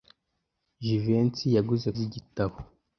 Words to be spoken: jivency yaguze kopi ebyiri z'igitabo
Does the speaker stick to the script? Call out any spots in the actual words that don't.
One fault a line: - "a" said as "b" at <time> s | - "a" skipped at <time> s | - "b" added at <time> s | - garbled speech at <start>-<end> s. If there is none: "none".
- "kopi ebyiri" skipped at 1.9 s